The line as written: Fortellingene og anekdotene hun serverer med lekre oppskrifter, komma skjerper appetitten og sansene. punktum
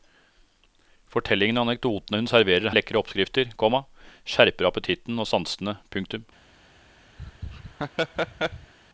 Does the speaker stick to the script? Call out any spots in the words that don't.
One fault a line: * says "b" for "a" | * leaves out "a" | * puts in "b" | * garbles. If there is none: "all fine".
all fine